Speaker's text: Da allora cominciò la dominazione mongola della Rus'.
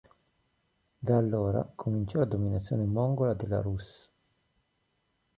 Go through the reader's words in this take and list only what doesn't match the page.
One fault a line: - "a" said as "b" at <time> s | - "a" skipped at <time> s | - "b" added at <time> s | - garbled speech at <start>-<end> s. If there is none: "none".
none